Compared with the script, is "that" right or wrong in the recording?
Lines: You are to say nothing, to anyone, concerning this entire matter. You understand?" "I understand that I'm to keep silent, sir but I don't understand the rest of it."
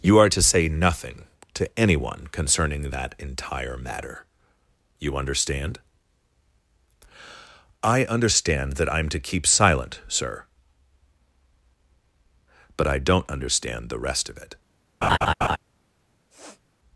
right